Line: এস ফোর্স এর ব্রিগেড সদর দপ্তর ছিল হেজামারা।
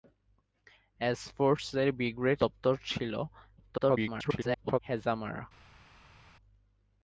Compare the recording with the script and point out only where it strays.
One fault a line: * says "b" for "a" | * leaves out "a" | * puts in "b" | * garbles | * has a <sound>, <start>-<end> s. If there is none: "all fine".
* leaves out "সদর"
* garbles